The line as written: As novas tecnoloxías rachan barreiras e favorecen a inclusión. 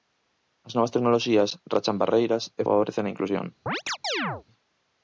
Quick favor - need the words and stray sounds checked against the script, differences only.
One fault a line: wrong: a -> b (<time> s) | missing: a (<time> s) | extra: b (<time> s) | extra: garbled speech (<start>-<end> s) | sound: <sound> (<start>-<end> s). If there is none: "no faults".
sound: chirp (3.7-4.4 s)